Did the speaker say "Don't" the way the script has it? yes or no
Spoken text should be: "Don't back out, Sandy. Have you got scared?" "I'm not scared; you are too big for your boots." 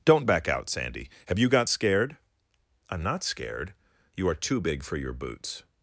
yes